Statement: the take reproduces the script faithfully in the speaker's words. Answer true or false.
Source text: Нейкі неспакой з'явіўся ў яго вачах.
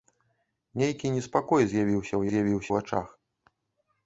false